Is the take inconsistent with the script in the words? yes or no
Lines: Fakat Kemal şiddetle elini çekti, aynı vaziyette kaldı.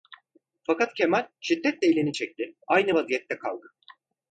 no